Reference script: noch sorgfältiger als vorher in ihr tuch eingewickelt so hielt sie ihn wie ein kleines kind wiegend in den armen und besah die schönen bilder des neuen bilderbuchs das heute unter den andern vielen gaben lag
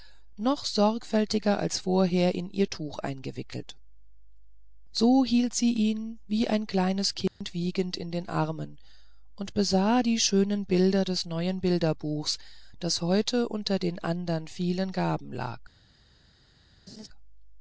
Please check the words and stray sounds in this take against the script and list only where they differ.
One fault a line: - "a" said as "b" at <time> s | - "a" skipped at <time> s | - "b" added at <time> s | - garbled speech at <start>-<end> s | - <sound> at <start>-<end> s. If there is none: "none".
- dropout at 7.3-7.4 s
- laugh at 16.9-17.1 s